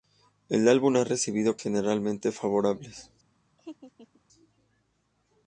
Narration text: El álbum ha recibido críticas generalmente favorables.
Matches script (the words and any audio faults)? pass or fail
fail